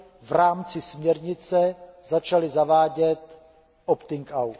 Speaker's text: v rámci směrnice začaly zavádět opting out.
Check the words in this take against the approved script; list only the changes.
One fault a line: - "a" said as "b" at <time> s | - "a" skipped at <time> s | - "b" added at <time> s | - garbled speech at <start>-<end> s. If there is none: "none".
none